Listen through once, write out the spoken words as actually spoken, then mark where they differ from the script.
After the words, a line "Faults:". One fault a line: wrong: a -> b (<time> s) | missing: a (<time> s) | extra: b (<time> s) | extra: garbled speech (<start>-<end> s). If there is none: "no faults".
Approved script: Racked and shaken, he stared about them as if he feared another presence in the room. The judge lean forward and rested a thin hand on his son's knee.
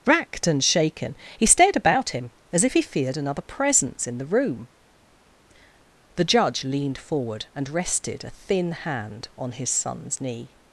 Racked and shaken, he stared about him as if he feared another presence in the room. The judge leaned forward and rested a thin hand on his son's knee.
Faults:
wrong: them -> him (2.1 s)
wrong: lean -> leaned (6.6 s)